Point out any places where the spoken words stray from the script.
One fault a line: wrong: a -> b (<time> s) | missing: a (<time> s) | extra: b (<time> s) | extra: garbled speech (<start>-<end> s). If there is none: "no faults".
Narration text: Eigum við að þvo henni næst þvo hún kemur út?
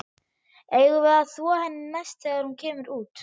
wrong: þvo -> þegar (2.3 s)